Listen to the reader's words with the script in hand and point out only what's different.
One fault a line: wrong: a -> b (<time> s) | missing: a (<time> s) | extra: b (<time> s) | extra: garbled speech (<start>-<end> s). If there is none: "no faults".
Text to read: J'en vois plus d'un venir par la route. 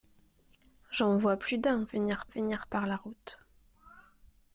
extra: venir (2.3 s)